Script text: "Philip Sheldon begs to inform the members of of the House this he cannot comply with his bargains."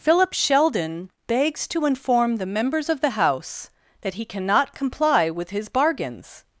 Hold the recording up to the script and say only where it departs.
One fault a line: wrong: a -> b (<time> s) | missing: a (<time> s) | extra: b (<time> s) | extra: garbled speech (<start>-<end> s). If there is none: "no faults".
missing: of (3.0 s)
wrong: this -> that (4.0 s)